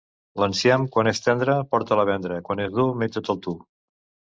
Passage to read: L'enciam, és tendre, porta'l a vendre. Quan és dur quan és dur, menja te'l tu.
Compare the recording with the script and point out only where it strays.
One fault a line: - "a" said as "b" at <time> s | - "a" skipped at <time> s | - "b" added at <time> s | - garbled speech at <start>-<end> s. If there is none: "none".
- "quan" added at 0.9 s
- "quan és dur" skipped at 2.9 s